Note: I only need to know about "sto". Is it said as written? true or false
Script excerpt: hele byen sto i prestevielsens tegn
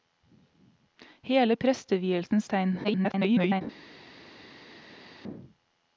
false